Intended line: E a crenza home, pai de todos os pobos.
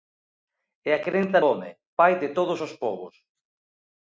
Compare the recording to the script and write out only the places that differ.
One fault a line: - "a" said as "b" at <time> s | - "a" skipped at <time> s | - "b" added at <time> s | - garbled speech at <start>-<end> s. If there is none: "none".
none